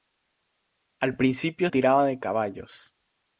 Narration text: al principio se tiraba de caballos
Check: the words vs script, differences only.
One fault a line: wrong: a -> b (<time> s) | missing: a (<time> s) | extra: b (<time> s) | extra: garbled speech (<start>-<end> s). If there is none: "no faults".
missing: se (1.7 s)